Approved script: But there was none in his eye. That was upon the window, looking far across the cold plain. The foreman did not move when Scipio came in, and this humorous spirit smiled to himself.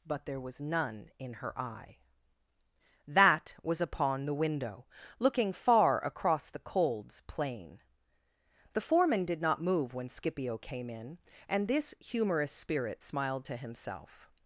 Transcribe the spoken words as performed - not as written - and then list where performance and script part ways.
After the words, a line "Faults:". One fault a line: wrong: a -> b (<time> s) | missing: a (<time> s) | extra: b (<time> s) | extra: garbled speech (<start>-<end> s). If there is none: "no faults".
But there was none in her eye. That was upon the window, looking far across the colds plain. The foreman did not move when Scipio came in, and this humorous spirit smiled to himself.
Faults:
wrong: his -> her (1.4 s)
wrong: cold -> colds (6.6 s)